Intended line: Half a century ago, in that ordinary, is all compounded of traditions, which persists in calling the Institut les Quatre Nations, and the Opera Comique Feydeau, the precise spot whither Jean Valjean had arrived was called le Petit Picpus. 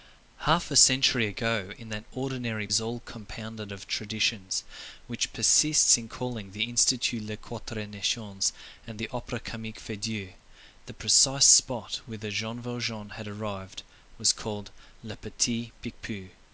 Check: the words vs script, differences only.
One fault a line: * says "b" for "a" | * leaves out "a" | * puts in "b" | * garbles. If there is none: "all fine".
all fine